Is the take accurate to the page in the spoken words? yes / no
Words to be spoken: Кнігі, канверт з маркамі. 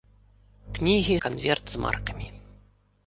yes